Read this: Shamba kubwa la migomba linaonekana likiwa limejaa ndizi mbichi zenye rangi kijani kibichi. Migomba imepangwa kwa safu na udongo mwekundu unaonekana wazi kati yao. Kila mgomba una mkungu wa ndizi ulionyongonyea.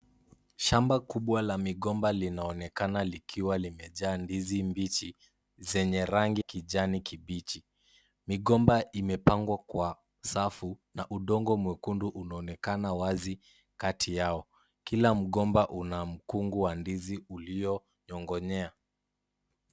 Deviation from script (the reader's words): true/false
false